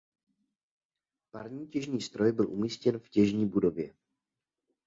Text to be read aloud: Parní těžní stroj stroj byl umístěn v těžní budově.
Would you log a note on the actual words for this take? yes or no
yes